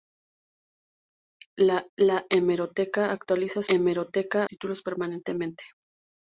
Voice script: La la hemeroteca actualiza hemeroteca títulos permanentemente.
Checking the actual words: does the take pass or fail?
pass